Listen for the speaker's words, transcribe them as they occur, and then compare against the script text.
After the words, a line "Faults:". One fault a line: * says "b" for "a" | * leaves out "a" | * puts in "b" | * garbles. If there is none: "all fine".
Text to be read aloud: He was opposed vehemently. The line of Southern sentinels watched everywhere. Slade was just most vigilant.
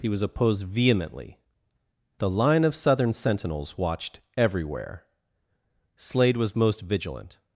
He was opposed vehemently. The line of Southern sentinels watched everywhere. Slade was most vigilant.
Faults:
* leaves out "just"